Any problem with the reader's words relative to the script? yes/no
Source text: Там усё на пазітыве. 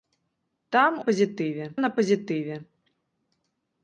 yes